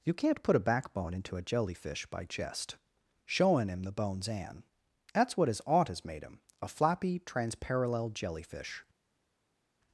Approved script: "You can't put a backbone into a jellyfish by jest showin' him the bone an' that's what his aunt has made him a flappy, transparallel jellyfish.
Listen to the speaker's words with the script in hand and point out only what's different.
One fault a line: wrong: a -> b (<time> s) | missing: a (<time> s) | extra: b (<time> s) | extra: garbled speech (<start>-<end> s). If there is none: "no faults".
wrong: bone -> bones (3.9 s)